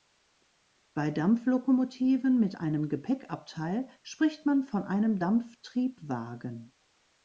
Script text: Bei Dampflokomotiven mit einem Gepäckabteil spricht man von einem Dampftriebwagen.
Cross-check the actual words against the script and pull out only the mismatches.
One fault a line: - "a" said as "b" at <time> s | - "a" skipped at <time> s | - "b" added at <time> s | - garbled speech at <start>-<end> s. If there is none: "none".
none